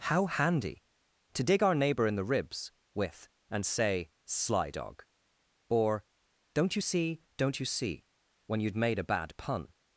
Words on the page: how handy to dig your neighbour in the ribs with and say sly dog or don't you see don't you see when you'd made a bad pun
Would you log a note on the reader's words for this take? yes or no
yes